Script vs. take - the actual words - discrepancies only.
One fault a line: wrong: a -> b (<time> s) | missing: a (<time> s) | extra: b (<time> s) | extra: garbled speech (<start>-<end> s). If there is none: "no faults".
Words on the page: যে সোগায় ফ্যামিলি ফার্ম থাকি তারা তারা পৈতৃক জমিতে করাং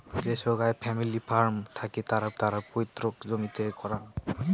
no faults